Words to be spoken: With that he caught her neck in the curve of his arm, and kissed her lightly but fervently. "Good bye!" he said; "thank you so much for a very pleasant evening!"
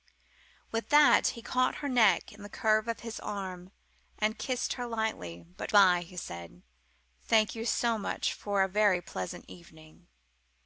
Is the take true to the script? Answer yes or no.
no